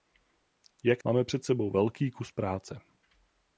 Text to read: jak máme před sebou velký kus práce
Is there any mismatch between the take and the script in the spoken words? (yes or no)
no